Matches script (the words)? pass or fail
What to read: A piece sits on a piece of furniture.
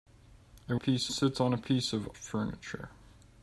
pass